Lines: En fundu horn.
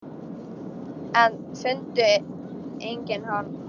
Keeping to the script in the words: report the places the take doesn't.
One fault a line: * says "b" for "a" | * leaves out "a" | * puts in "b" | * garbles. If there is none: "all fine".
* puts in "engin"